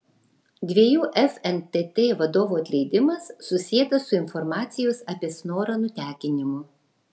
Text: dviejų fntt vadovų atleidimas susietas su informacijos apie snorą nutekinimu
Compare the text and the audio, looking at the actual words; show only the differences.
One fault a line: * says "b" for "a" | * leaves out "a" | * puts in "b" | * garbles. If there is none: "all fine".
all fine